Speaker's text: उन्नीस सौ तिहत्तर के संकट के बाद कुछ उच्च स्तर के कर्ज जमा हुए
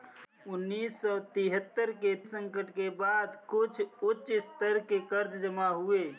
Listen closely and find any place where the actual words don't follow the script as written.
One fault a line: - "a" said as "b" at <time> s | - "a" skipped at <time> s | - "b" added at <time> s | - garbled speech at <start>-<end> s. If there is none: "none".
none